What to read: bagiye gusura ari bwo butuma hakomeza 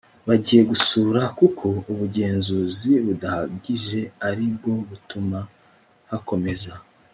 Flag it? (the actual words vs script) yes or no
yes